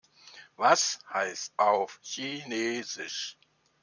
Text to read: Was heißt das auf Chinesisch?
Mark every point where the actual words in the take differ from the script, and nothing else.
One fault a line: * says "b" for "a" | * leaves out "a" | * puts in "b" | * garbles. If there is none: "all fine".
* leaves out "das"